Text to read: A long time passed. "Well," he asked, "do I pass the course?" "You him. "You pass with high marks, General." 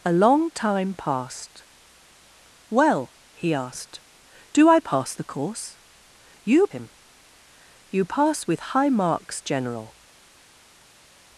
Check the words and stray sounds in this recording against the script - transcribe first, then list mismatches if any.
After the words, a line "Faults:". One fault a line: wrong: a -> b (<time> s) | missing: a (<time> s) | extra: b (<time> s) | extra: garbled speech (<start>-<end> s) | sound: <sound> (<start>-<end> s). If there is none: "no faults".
A long time passed. "Well," he asked, "do I pass the course?" "You him. "You pass with high marks, General."
Faults:
no faults